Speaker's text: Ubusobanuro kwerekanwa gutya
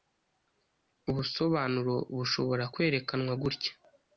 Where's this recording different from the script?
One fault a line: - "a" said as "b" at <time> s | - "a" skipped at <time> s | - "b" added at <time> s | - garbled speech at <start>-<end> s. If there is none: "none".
- "bushobora" added at 2.2 s